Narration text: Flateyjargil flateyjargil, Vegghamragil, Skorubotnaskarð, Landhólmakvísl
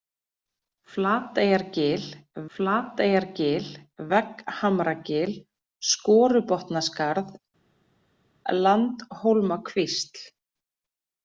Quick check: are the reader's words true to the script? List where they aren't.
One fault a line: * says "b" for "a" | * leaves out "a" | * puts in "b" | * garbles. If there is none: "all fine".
all fine